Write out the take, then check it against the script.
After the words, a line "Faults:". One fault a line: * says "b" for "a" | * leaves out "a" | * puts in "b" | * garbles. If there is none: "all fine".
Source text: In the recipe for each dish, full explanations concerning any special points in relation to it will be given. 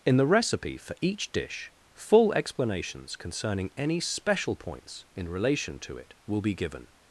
In the recipe for each dish, full explanations concerning any special points in relation to it will be given.
Faults:
all fine